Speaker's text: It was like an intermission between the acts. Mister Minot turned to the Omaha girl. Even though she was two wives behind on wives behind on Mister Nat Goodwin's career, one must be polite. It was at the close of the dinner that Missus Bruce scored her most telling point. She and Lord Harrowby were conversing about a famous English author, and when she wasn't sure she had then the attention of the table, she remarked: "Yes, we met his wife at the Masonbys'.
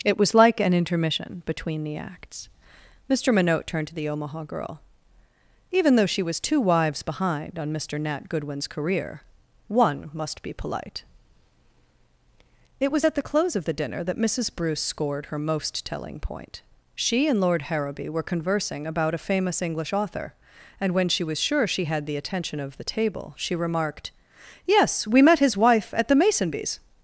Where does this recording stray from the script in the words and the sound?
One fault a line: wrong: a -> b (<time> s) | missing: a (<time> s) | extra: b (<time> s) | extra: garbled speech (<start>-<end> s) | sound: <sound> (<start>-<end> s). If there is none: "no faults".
missing: wives behind on (7.7 s)
wrong: wasn't -> was (21.2 s)
missing: then (22.1 s)